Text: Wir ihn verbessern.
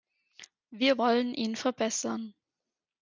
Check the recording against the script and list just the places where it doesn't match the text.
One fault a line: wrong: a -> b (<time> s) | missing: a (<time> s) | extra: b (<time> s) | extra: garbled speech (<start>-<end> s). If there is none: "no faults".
extra: wollen (1.0 s)